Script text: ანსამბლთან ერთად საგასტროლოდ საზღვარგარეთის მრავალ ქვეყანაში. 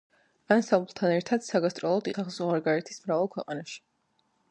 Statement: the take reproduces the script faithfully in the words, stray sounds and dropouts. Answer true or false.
true